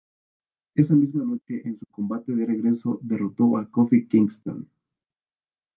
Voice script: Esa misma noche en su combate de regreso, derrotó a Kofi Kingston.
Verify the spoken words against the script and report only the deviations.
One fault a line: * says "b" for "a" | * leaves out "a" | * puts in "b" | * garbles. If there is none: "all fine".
all fine